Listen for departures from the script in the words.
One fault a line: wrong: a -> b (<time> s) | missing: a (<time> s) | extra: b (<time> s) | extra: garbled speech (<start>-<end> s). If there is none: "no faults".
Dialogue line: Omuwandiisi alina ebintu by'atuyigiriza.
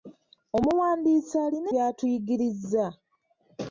missing: ebintu (1.7 s)